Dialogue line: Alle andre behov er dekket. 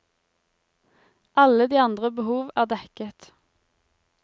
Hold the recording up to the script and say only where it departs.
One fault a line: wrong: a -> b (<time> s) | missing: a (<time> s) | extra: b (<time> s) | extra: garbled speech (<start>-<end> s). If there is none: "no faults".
extra: de (1.7 s)